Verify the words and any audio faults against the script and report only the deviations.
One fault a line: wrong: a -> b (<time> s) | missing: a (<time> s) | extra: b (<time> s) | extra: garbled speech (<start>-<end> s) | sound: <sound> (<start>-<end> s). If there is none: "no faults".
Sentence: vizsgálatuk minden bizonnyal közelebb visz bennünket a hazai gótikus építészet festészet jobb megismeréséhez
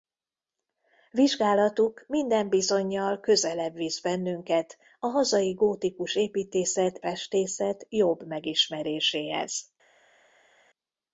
no faults